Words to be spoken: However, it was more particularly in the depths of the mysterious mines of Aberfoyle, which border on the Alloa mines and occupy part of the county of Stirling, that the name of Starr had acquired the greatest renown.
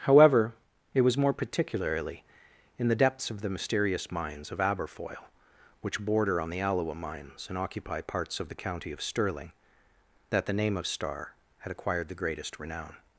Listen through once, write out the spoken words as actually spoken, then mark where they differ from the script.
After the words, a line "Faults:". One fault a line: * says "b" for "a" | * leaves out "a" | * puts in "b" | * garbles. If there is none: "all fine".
However, it was more particularly in the depths of the mysterious mines of Aberfoyle, which border on the Alloa mines and occupy parts of the county of Stirling, that the name of Starr had acquired the greatest renown.
Faults:
* says "parts" for "part"